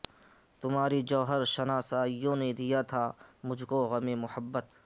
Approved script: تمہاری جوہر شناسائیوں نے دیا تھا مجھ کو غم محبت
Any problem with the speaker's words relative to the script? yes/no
no